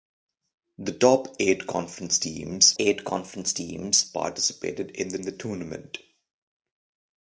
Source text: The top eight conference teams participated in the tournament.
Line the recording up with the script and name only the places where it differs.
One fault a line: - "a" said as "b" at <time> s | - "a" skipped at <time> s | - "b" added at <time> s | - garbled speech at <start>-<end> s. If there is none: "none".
- "eight conference teams" added at 2.8 s
- "the" added at 5.2 s